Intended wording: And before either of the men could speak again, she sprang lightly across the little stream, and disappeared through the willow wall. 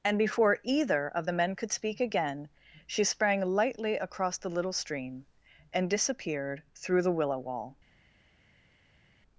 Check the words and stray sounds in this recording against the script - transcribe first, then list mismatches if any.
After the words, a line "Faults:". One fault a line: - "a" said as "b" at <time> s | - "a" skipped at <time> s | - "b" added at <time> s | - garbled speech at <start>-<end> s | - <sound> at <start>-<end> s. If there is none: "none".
And before either of the men could speak again, she sprang lightly across the little stream, and disappeared through the willow wall.
Faults:
none